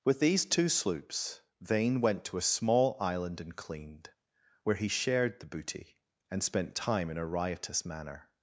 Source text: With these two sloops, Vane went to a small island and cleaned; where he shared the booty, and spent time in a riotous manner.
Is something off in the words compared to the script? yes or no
no